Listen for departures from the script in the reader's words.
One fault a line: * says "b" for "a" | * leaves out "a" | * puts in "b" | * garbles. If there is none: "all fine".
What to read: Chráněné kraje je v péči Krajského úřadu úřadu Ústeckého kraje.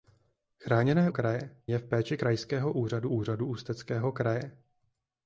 all fine